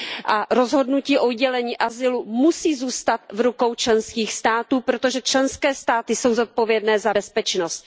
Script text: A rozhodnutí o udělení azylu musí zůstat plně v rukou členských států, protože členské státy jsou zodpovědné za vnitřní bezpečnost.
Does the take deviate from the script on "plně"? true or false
true